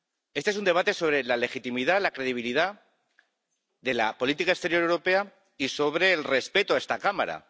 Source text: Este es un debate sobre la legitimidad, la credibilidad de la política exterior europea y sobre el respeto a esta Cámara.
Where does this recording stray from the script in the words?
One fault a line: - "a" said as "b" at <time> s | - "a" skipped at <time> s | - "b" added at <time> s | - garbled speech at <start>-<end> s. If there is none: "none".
none